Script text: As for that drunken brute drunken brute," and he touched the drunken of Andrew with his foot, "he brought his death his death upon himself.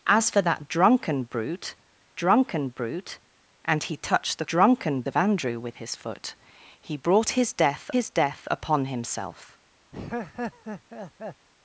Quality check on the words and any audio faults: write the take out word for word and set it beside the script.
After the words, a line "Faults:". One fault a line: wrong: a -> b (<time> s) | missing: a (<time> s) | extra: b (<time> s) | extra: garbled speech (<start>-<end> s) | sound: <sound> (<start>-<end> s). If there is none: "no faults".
As for that drunken brute drunken brute," and he touched the drunken of Andrew with his foot, "he brought his death his death upon himself.
Faults:
sound: laugh (9.9-11.5 s)